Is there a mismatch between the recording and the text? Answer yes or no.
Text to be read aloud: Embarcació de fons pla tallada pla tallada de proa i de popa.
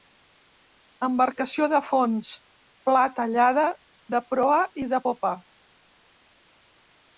yes